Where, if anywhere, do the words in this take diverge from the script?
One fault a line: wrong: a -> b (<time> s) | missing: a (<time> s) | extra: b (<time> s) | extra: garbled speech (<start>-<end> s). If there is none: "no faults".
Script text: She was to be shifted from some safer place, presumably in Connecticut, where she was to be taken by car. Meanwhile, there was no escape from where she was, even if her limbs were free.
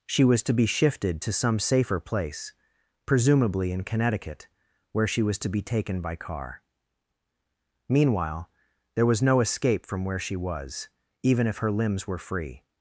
wrong: from -> to (1.2 s)